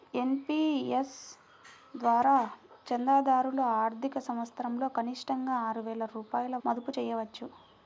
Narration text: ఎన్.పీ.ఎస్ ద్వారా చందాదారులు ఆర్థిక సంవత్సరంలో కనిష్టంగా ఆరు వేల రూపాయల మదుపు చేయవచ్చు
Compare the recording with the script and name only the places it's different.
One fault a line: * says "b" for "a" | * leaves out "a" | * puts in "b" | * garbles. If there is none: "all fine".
all fine